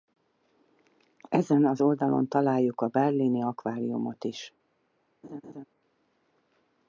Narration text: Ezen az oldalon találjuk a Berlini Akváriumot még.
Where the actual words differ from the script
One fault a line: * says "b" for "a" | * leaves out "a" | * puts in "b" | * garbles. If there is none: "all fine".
* says "is" for "még"